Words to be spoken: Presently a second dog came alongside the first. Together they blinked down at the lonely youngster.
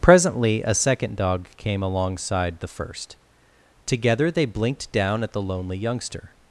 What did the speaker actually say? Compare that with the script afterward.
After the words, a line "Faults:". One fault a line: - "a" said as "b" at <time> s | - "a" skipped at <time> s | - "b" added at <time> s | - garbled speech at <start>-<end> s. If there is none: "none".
Presently a second dog came alongside the first. Together they blinked down at the lonely youngster.
Faults:
none